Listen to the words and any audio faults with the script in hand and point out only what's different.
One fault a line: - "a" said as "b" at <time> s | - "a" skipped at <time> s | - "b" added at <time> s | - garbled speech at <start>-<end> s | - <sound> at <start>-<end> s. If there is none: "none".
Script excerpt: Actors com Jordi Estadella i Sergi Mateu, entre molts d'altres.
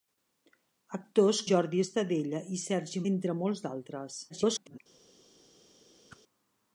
- "com" skipped at 1.4 s
- "Mateu" skipped at 3.0 s
- garbled speech at 4.3-4.8 s
- whoosh at 6.1-6.2 s